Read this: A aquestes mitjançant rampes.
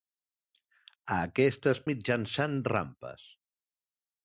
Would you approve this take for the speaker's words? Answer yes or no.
yes